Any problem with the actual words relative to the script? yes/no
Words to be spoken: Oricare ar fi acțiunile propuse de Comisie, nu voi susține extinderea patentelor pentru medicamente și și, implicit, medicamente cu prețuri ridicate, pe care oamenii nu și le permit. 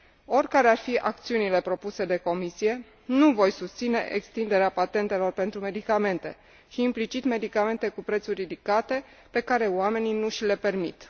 yes